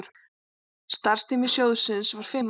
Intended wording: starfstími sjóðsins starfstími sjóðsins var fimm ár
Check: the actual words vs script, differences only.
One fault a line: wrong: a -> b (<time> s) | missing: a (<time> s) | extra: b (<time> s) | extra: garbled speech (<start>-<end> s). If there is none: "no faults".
missing: starfstími sjóðsins (2.1 s)